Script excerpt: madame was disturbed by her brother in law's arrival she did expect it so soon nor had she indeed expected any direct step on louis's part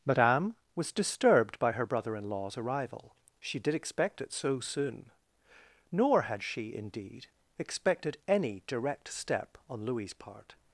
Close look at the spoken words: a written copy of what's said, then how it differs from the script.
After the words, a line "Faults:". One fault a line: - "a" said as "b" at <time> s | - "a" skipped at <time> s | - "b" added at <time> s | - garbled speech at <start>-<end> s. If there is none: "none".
madame was disturbed by her brother in law's arrival she did expect it so soon nor had she indeed expected any direct step on louis's part
Faults:
none